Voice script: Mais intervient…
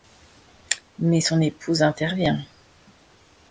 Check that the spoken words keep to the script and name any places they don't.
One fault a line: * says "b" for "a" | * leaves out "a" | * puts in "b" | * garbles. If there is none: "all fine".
* puts in "son épouse"